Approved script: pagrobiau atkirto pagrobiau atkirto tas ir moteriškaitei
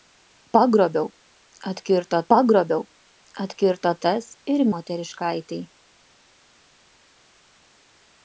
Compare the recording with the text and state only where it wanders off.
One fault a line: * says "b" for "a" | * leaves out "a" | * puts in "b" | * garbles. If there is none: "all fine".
all fine